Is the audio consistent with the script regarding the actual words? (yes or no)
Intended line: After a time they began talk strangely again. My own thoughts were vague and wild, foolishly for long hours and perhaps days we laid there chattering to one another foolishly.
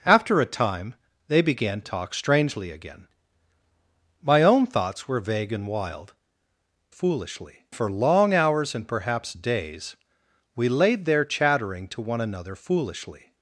yes